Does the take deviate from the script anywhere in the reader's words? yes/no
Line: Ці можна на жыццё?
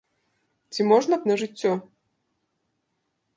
no